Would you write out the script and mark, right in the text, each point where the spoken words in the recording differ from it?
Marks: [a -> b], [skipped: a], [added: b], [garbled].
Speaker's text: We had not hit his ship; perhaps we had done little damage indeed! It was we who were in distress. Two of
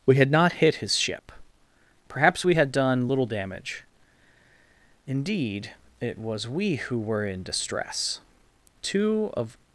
We had not hit his ship; perhaps we had done little damage indeed! It was we who were in distress. Two of